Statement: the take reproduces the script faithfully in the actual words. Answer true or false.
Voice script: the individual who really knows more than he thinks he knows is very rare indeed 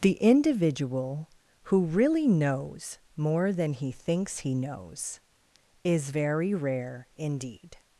true